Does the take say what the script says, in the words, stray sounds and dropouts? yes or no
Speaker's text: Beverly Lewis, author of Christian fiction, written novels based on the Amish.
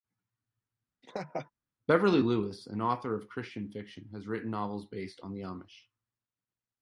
no